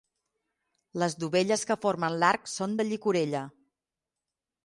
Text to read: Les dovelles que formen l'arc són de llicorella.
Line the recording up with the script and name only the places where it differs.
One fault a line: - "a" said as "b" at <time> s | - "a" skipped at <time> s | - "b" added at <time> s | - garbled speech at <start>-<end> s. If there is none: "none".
none